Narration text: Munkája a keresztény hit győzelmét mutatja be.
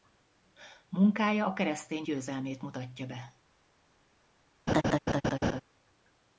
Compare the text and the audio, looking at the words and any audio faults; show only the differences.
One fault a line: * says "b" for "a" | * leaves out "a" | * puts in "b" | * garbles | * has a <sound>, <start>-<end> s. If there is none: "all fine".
* leaves out "hit"
* has a laugh, 4.7-5.6 s